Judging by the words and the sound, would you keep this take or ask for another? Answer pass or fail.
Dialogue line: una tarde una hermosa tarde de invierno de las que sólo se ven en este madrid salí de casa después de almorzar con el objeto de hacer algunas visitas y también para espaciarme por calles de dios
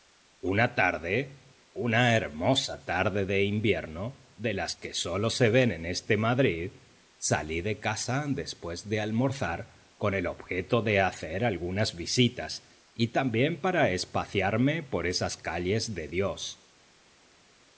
fail